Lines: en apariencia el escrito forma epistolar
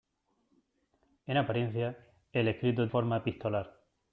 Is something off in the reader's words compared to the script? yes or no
no